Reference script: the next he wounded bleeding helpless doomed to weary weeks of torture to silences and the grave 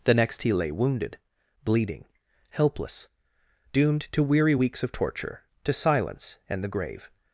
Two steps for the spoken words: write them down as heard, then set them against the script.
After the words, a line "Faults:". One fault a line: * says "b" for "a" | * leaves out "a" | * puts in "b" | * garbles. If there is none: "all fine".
the next he lay wounded bleeding helpless doomed to weary weeks of torture to silence and the grave
Faults:
* puts in "lay"
* says "silence" for "silences"